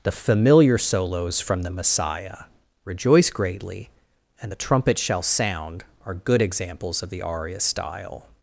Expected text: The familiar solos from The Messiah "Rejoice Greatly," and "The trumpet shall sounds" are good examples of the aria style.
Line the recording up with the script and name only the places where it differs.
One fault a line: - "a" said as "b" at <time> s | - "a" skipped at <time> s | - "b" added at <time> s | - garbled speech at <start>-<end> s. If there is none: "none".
- "sounds" said as "sound" at 5.2 s